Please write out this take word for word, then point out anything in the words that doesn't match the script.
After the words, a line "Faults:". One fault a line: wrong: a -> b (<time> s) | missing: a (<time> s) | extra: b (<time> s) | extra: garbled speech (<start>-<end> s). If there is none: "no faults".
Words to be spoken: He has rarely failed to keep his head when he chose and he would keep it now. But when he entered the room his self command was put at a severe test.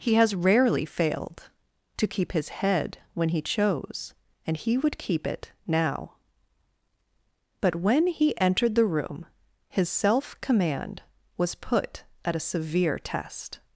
He has rarely failed to keep his head when he chose and he would keep it now. But when he entered the room his self command was put at a severe test.
Faults:
no faults